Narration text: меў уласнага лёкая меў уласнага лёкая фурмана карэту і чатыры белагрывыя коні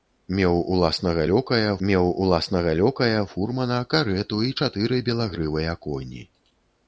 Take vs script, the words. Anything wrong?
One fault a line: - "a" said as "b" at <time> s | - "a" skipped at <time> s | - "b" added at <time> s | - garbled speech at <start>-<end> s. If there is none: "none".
none